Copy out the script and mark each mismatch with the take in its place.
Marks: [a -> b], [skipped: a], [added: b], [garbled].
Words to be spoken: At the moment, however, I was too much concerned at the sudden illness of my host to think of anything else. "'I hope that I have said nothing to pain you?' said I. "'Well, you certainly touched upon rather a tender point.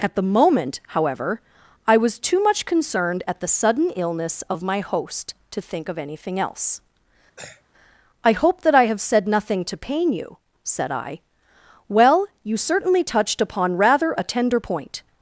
At the moment, however, I was too much concerned at the sudden illness of my host to think of anything else. "'I hope that I have said nothing to pain you?' said I. "'Well, you certainly touched upon rather a tender point.